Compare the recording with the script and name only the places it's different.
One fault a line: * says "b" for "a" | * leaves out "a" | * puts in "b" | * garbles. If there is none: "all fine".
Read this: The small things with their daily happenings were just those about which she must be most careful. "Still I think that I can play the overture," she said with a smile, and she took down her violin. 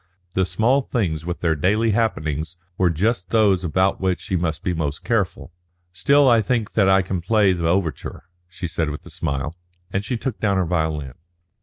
all fine